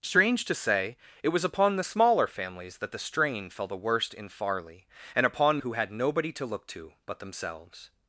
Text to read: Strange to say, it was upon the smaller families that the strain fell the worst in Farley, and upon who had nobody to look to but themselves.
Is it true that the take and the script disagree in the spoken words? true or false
false